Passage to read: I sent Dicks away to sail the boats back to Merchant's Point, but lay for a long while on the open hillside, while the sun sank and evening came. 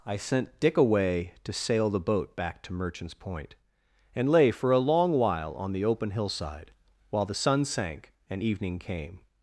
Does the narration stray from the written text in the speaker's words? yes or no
yes